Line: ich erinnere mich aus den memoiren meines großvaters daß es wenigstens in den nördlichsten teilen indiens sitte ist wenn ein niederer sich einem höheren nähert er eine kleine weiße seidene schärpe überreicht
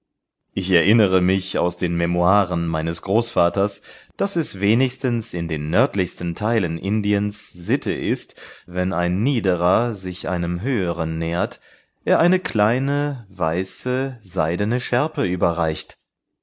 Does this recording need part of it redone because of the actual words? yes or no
no